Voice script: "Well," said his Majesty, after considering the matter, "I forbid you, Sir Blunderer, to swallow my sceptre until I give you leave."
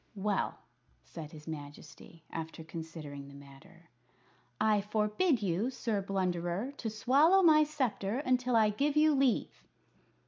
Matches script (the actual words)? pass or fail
pass